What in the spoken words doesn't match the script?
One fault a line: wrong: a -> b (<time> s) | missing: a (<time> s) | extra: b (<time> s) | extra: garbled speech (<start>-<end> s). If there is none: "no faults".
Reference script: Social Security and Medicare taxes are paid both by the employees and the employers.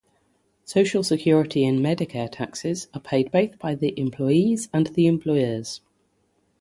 no faults